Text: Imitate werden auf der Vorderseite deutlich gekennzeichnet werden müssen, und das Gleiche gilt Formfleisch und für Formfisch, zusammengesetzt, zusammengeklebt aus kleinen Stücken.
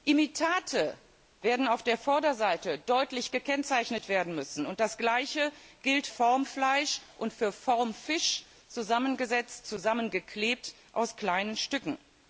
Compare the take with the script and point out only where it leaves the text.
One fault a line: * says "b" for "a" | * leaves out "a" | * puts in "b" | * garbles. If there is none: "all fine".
all fine